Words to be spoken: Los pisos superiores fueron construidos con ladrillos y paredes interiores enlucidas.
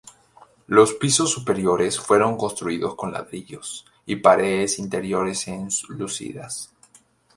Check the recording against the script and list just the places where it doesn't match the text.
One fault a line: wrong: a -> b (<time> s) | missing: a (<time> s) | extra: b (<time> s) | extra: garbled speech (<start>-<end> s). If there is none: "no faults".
no faults